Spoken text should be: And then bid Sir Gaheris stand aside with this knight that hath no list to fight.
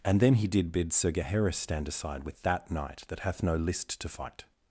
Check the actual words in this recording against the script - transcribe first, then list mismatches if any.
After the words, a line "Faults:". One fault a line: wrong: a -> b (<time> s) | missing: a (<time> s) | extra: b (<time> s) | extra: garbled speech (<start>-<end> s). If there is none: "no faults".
And then he did bid Sir Gaheris stand aside with that knight that hath no list to fight.
Faults:
extra: he did (0.3 s)
wrong: this -> that (2.4 s)